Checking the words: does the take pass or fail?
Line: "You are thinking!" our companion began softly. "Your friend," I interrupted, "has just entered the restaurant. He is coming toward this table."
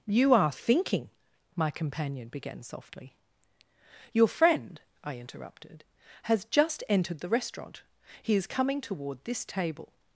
fail